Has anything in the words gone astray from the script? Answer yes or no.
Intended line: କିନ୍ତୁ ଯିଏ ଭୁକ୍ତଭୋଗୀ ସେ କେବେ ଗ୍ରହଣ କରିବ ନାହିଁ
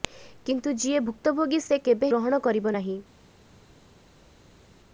no